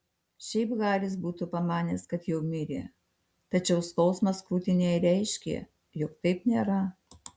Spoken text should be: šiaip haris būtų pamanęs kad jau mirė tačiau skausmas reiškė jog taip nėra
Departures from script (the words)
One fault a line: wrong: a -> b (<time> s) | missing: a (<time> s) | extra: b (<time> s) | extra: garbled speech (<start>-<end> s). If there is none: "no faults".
extra: krūtinėje (4.5 s)